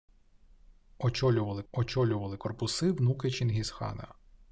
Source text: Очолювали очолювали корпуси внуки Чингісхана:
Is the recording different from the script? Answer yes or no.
no